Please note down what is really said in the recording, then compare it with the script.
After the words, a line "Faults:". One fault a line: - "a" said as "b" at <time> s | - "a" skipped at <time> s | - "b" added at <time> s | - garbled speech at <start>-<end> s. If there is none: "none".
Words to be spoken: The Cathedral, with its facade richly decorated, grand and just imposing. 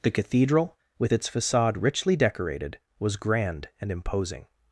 The Cathedral, with its facade richly decorated, was grand and imposing.
Faults:
- "was" added at 3.0 s
- "just" skipped at 3.9 s